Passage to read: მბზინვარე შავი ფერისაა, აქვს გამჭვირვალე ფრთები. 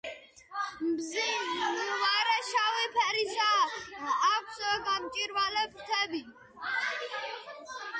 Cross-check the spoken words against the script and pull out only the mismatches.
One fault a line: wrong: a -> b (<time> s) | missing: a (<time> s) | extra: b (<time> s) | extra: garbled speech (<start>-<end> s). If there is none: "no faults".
no faults